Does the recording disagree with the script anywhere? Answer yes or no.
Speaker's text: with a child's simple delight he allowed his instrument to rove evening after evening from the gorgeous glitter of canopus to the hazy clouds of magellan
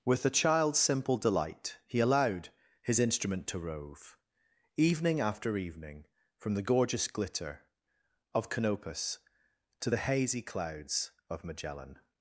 no